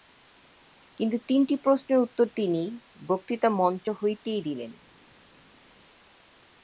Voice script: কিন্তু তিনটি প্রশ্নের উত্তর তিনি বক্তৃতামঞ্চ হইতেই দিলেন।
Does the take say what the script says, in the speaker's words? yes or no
yes